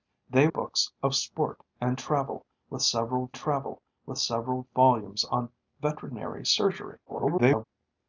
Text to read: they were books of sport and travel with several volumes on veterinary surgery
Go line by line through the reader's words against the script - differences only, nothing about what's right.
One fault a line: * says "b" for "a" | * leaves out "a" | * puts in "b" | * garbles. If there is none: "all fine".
* leaves out "were"
* puts in "travel with several"
* garbles